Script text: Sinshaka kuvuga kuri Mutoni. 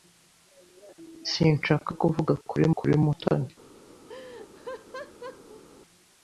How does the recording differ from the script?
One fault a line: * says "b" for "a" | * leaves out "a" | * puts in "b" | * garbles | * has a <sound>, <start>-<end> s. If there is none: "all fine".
* puts in "kuri"
* has a laugh, 4.1-5.6 s